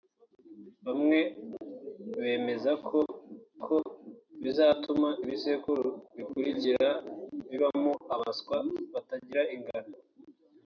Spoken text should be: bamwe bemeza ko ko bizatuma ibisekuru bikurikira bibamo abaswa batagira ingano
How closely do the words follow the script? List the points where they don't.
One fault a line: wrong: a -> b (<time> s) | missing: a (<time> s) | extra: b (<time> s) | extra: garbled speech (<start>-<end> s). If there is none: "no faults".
no faults